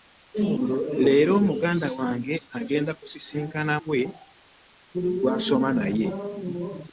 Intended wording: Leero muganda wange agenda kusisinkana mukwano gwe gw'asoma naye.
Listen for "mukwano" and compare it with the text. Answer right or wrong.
wrong